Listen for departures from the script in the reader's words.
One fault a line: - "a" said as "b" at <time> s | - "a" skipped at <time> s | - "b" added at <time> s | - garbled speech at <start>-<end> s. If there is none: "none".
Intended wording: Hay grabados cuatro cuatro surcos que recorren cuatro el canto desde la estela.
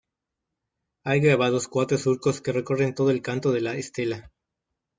- "cuatro" skipped at 1.9 s
- "cuatro" said as "todo" at 3.0 s
- "desde" said as "de" at 3.5 s